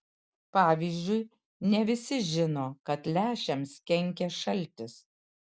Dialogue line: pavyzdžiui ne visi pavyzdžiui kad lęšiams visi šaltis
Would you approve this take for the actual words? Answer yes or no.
no